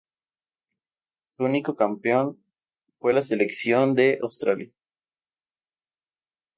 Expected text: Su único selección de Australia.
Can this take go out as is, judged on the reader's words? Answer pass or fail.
fail